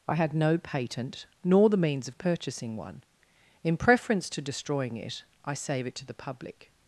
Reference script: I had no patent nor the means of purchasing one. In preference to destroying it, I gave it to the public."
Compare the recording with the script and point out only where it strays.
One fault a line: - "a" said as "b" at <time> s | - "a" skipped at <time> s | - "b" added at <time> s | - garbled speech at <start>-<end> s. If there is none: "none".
- "gave" said as "save" at 5.5 s